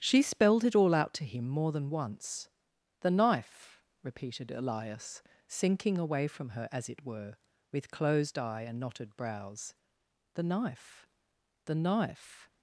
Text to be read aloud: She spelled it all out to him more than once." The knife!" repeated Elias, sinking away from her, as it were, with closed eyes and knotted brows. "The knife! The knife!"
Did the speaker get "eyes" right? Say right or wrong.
wrong